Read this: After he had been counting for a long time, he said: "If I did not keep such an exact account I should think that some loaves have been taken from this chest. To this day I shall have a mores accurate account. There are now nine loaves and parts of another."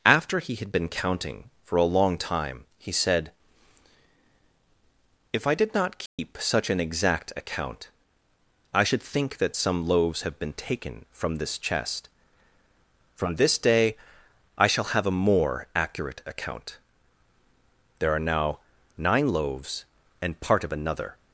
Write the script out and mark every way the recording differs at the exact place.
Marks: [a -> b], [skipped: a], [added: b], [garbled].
After he had been counting for a long time, he said: "If I did not keep such an exact account I should think that some loaves have been taken from this chest. [To -> From] this day I shall have a [mores -> more] accurate account. There are now nine loaves and [parts -> part] of another."